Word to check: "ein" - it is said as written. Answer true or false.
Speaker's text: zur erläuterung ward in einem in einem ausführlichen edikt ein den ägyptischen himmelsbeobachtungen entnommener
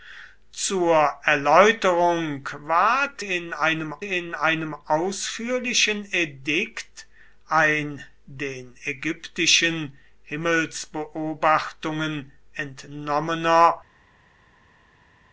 true